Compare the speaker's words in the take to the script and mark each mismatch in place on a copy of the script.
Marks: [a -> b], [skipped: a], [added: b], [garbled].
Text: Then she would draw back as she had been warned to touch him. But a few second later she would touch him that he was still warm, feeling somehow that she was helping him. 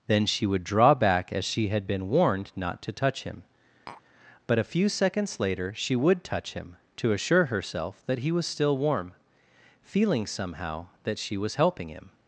Then she would draw back as she had been warned [added: not] to touch him. But a few [second -> seconds] later she would touch him [added: to assure herself] that he was still warm, feeling somehow that she was helping him.